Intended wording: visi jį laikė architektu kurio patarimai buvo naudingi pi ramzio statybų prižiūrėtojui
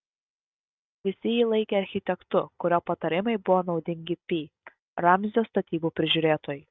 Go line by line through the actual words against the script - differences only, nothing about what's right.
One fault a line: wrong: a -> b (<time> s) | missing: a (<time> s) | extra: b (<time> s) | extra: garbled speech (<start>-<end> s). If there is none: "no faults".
no faults